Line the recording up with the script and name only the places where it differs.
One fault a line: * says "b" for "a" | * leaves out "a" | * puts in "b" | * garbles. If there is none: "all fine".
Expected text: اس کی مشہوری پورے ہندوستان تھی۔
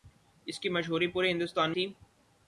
all fine